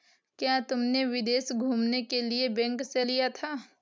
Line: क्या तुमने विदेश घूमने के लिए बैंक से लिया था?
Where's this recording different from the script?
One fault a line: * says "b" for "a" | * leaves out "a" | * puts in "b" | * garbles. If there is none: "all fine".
all fine